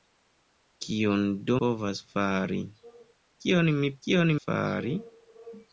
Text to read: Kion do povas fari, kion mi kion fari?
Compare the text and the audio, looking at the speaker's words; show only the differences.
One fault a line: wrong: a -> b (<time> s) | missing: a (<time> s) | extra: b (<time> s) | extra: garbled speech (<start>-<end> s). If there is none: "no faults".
no faults